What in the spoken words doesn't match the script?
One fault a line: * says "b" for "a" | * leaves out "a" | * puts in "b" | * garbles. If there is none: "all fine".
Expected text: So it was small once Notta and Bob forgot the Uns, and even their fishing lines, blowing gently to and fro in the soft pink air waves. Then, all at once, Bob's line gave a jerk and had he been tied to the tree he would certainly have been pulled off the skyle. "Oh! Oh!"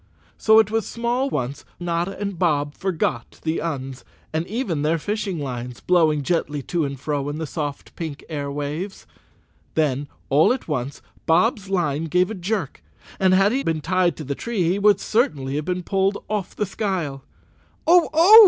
all fine